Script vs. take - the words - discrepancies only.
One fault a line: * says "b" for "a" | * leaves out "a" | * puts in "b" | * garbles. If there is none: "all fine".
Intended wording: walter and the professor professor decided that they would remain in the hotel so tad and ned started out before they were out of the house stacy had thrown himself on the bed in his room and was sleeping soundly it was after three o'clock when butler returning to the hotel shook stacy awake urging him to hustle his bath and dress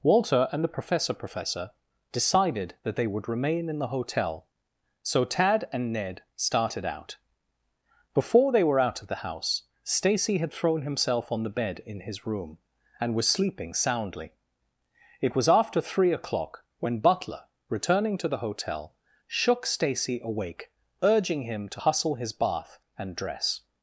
all fine